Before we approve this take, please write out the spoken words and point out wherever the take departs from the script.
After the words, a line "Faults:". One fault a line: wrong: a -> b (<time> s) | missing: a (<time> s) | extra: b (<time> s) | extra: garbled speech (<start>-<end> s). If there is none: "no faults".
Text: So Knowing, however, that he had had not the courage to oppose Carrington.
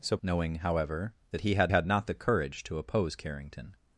So Knowing, however, that he had had not the courage to oppose Carrington.
Faults:
no faults